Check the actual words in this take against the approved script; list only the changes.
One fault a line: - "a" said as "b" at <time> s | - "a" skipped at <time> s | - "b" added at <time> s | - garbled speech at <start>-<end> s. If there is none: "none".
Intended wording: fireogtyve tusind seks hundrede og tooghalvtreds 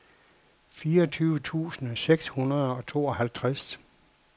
none